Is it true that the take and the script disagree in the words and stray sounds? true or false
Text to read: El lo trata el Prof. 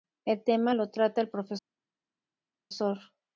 true